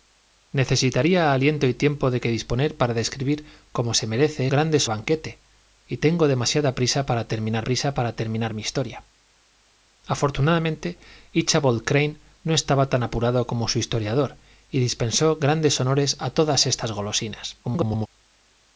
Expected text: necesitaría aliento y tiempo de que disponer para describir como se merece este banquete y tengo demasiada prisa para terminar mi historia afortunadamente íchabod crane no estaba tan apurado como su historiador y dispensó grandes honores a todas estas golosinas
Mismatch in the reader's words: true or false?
true